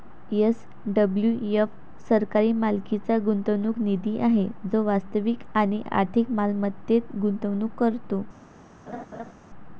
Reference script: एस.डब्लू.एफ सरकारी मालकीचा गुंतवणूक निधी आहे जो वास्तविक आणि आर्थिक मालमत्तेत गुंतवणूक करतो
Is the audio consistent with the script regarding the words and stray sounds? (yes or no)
no